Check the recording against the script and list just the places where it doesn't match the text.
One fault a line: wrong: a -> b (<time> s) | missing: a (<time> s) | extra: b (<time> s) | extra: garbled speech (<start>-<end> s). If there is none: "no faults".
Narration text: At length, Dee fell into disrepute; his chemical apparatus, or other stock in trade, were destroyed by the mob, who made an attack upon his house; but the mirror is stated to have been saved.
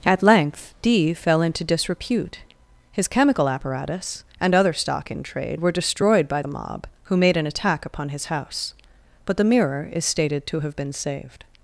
wrong: or -> and (4.4 s)